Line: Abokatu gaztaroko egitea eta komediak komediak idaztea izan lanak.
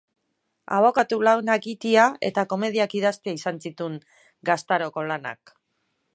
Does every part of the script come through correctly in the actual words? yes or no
no